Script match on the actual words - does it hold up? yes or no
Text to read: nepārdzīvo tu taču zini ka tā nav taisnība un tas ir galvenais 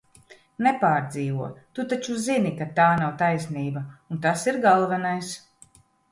yes